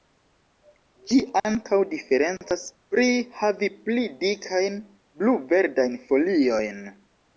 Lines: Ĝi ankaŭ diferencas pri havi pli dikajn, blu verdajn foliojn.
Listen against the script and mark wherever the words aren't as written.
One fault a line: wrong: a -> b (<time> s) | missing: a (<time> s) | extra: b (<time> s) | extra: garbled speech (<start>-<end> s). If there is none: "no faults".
no faults